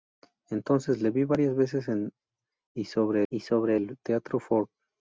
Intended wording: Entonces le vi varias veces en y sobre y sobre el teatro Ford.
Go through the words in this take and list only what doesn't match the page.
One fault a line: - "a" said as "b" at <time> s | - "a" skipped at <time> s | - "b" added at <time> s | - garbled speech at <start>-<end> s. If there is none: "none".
none